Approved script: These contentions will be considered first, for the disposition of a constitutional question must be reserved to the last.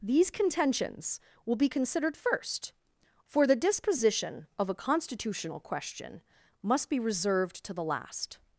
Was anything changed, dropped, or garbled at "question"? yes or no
no